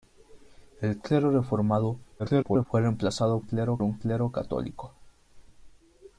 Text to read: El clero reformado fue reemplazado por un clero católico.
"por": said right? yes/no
no